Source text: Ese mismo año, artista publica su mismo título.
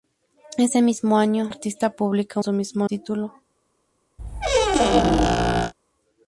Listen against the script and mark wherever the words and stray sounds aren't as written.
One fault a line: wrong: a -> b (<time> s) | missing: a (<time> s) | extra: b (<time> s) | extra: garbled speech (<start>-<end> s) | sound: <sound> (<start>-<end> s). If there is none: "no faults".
sound: squeak (4.2-5.7 s)